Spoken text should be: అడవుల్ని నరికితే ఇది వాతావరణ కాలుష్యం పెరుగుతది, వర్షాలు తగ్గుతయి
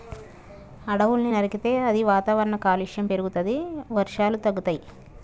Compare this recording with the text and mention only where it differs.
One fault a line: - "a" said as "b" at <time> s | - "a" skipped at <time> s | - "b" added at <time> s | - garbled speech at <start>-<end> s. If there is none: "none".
- "ఇది" said as "అది" at 1.9 s